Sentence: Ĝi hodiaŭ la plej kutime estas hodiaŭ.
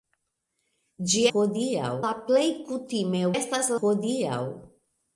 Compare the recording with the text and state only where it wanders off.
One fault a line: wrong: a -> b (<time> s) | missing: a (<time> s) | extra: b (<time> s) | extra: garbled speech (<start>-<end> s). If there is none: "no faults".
no faults